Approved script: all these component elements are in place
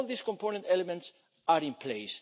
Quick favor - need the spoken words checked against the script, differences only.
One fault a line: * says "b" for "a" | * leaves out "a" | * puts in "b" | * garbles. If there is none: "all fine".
all fine